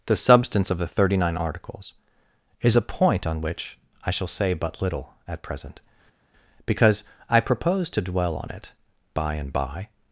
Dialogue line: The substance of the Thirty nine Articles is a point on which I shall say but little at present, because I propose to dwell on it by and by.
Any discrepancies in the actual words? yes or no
no